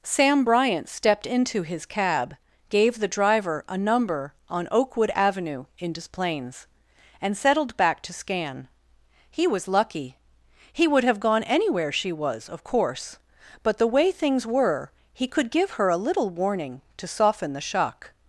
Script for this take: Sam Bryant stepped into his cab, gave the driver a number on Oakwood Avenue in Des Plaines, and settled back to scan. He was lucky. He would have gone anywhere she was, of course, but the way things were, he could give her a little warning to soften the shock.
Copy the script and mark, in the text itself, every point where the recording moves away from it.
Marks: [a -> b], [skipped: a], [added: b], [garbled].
Sam Bryant stepped into his cab, gave the driver a number on Oakwood Avenue in Des Plaines, and settled back to scan. He was lucky. He would have gone anywhere she was, of course, but the way things were, he could give her a little warning to soften the shock.